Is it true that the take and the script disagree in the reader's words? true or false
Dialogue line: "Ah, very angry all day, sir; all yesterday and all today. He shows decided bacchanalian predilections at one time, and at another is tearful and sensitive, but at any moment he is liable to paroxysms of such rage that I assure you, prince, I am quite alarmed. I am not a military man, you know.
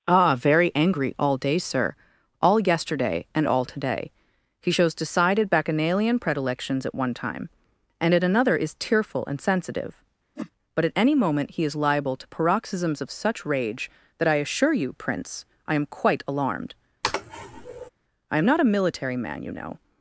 false